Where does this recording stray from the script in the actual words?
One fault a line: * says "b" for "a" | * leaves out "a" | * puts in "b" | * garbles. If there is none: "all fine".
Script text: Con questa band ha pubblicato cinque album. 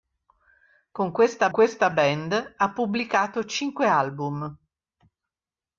* puts in "questa"